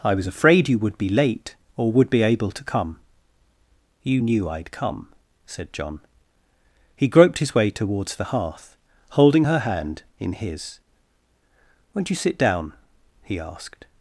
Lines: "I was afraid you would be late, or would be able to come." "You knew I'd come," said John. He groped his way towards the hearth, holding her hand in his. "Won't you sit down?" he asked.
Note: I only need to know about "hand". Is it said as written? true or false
true